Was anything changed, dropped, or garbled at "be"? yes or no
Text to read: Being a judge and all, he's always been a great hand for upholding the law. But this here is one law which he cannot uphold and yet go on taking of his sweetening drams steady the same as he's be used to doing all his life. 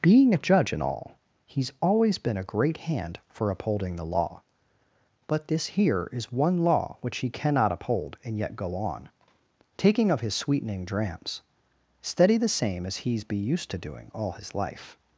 no